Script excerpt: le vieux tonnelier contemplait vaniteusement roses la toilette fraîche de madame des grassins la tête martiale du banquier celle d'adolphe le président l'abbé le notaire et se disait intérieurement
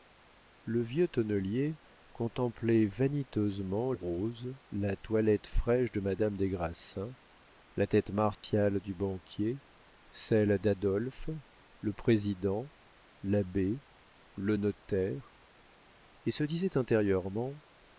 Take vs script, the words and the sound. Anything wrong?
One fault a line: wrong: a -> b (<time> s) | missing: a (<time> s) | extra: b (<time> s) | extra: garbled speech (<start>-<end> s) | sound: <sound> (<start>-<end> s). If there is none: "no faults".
sound: dropout (8.3-8.4 s)